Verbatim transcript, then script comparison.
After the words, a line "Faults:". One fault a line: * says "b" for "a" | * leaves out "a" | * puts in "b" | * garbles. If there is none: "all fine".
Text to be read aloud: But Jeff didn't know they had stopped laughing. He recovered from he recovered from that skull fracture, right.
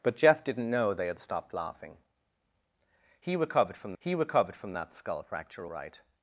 But Jeff didn't know they had stopped laughing. He recovered from he recovered from that skull fracture, right.
Faults:
all fine